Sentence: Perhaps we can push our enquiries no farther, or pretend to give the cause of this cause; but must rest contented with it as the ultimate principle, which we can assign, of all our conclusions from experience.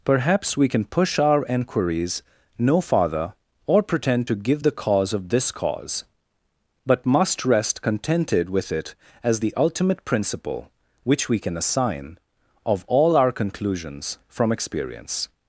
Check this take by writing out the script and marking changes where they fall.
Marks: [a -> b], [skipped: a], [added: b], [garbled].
Perhaps we can push our enquiries no farther, or pretend to give the cause of this cause; but must rest contented with it as the ultimate principle, which we can assign, of all our conclusions from experience.